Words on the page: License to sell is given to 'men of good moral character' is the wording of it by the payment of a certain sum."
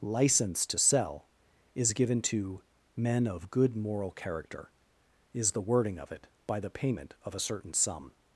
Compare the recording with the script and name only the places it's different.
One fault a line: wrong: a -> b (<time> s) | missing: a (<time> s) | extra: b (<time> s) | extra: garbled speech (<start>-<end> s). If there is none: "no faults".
no faults